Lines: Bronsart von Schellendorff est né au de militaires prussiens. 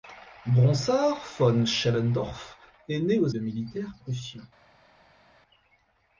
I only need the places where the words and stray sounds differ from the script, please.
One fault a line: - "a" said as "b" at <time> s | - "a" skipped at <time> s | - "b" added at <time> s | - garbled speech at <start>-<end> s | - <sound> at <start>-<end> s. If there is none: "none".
none